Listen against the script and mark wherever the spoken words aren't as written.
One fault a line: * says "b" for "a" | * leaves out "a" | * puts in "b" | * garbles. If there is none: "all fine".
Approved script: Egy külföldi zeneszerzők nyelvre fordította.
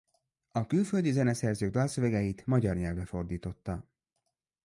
* says "A" for "Egy"
* puts in "dalszövegeit magyar"